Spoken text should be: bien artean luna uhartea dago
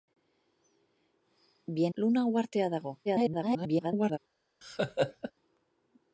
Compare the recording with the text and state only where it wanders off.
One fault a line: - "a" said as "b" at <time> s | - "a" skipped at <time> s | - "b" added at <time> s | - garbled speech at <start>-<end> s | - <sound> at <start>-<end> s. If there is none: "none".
- "artean" skipped at 1.9 s
- garbled speech at 3.0-4.2 s
- laugh at 4.6-5.3 s